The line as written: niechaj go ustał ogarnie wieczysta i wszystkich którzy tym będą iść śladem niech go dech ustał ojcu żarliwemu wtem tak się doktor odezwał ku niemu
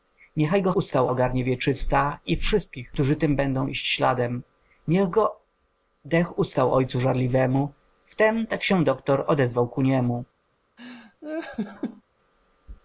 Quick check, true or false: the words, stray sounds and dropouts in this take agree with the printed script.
false